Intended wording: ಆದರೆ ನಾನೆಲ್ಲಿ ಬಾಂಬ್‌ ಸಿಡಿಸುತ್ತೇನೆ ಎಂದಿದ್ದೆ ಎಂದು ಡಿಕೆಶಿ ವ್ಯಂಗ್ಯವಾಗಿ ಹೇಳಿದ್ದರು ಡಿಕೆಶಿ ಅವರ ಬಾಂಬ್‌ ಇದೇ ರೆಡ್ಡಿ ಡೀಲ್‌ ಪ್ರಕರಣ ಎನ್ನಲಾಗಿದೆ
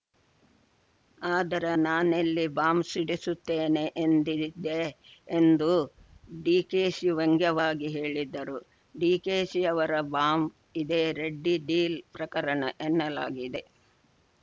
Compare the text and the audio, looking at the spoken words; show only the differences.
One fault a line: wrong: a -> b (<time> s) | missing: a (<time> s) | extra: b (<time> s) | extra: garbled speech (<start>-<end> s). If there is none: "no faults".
no faults